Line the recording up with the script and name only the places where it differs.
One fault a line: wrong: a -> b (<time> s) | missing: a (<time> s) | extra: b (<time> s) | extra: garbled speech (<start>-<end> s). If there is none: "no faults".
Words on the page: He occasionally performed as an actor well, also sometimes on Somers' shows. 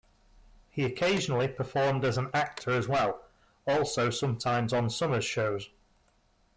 extra: as (2.7 s)